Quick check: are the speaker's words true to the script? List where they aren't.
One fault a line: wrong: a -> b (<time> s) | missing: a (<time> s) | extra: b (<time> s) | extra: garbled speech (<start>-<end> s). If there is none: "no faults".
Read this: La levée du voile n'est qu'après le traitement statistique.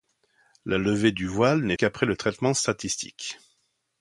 no faults